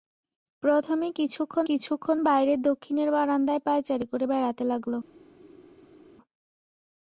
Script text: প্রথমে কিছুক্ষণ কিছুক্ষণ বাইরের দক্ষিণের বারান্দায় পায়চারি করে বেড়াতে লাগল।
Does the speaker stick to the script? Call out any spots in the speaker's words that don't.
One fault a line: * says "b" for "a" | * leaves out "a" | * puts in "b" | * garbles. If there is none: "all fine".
all fine